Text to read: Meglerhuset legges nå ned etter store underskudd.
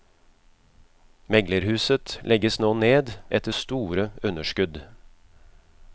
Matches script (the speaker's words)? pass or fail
pass